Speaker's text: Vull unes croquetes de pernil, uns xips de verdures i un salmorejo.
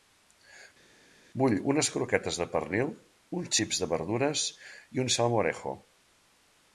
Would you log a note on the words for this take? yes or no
no